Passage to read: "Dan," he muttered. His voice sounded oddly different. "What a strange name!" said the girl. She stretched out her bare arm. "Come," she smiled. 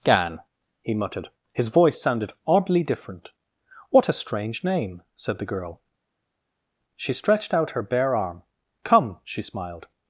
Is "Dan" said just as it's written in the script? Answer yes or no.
no